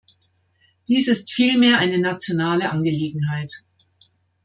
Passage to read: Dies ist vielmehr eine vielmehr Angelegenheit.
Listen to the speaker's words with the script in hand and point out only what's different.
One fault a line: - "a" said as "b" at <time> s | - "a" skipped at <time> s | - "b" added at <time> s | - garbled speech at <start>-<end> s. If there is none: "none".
- "vielmehr" said as "nationale" at 2.0 s